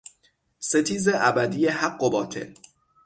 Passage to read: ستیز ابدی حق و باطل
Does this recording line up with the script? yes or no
yes